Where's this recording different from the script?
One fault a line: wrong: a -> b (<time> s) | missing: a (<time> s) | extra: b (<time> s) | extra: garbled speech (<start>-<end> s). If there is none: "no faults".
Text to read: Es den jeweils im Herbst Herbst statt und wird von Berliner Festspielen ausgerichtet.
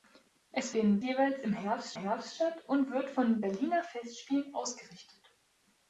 no faults